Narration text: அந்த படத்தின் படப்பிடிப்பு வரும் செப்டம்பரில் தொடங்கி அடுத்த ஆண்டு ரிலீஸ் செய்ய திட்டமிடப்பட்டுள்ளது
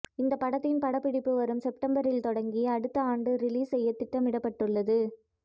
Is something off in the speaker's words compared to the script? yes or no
yes